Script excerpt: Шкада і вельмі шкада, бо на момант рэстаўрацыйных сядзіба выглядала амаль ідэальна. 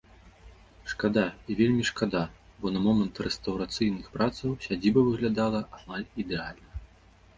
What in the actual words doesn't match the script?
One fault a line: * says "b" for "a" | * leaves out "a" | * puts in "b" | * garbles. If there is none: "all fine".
* puts in "працаў"